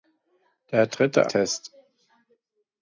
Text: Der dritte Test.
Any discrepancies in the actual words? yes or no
no